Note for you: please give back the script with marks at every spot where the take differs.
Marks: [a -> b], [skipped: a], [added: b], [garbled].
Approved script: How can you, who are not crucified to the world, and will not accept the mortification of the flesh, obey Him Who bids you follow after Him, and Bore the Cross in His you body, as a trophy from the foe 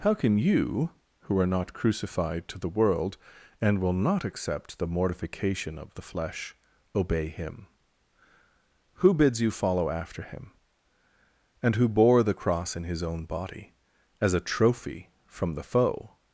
How can you, who are not crucified to the world, and will not accept the mortification of the flesh, obey Him Who bids you follow after Him, and [added: Who] Bore the Cross in His [you -> own] body, as a trophy from the foe